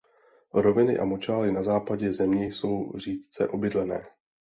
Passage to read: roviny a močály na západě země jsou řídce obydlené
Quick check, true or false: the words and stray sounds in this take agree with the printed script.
true